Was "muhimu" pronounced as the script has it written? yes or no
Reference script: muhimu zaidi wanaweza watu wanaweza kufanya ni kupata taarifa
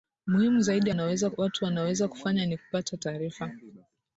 yes